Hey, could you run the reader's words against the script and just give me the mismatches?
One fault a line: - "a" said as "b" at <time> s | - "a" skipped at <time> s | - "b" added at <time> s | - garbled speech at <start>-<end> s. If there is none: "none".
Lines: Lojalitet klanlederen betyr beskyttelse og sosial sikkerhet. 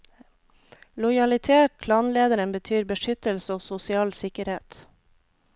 none